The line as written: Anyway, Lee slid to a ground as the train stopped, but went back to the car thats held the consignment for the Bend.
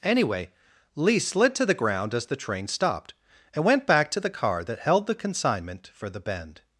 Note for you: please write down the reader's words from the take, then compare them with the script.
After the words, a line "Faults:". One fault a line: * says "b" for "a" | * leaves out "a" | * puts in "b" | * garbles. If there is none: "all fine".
Anyway, Lee slid to the ground as the train stopped, and went back to the car that held the consignment for the Bend.
Faults:
* says "the" for "a"
* says "and" for "but"
* says "that" for "thats"